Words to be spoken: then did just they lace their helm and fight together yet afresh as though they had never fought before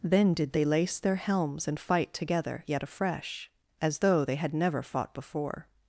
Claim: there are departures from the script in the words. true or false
true